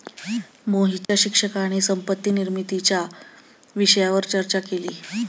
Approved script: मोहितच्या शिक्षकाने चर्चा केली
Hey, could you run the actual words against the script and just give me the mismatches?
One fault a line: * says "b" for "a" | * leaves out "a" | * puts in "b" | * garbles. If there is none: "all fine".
* puts in "संपत्ती निर्मितीच्या विषयावर"